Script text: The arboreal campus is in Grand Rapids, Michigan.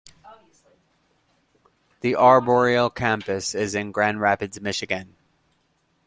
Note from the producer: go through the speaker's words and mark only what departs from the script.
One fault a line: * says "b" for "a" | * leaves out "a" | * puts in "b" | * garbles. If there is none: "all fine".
all fine